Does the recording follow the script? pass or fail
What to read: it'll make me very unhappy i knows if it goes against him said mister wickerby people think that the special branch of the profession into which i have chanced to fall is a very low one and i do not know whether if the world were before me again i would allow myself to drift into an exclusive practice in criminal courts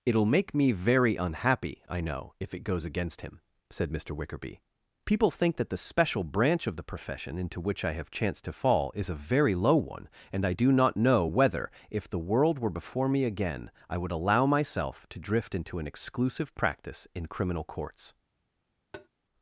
fail